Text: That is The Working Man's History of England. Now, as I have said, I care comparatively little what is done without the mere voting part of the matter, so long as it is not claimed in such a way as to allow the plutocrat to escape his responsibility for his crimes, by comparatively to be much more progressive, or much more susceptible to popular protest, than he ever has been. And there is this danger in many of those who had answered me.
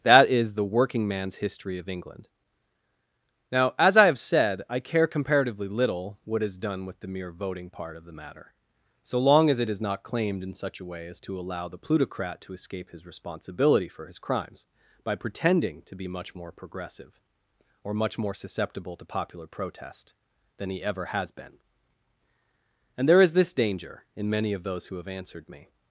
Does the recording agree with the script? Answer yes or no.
no